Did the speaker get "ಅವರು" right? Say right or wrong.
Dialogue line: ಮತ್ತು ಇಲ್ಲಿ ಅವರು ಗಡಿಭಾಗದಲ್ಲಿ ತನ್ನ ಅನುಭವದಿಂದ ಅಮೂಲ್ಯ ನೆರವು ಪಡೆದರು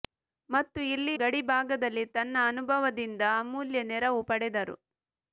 wrong